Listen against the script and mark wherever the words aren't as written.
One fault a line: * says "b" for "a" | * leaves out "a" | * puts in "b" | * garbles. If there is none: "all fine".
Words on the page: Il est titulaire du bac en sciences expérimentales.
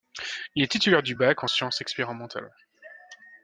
all fine